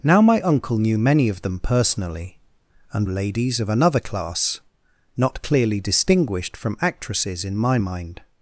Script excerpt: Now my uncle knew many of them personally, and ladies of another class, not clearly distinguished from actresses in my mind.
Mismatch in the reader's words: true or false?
false